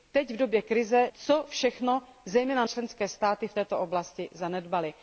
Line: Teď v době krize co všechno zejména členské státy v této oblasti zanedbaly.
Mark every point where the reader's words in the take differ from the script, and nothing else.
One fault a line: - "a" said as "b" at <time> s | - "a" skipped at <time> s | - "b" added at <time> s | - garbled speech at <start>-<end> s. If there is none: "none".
none